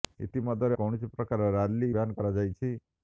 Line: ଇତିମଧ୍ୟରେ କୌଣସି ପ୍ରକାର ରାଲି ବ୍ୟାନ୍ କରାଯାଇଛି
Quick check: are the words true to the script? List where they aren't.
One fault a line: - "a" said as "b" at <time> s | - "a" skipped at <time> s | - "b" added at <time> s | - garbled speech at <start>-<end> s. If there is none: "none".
none